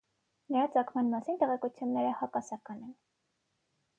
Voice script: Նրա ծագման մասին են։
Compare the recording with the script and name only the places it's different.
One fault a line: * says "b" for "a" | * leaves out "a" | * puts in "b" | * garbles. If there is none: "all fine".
* puts in "տեղեկությունները հակասական"